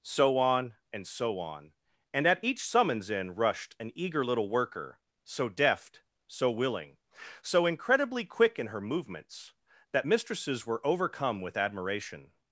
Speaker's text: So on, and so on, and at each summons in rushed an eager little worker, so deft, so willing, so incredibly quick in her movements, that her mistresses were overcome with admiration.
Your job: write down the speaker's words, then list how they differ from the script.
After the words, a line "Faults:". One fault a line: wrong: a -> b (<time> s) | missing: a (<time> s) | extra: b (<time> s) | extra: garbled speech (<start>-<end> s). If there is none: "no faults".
So on, and so on, and at each summons in rushed an eager little worker, so deft, so willing, so incredibly quick in her movements, that mistresses were overcome with admiration.
Faults:
missing: her (10.1 s)